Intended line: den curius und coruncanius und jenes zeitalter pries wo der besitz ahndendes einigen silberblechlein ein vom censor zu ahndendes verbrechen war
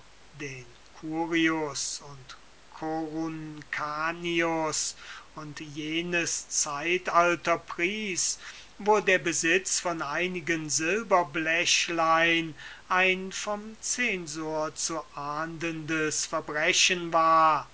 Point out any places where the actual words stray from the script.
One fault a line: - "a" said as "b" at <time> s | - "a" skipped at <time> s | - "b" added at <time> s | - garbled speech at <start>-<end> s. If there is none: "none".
- "ahndendes" said as "von" at 9.8 s